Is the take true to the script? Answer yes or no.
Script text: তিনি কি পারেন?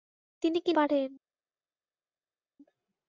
yes